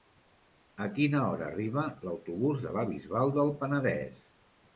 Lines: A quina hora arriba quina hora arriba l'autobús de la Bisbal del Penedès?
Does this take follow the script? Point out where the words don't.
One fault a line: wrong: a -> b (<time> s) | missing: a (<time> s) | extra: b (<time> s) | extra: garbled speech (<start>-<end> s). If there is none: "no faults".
missing: quina hora arriba (1.8 s)